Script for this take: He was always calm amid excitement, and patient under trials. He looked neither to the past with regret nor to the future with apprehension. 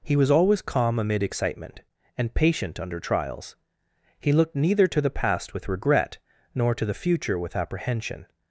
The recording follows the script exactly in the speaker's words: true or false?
true